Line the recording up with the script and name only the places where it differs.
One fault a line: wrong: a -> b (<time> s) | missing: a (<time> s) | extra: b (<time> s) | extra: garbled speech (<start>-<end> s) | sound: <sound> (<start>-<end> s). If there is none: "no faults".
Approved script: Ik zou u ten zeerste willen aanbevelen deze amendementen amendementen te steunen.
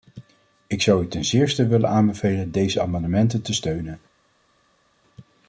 missing: amendementen (3.4 s)